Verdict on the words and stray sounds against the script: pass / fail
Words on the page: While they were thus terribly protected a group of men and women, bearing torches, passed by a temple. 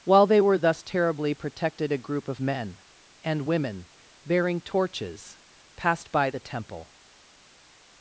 fail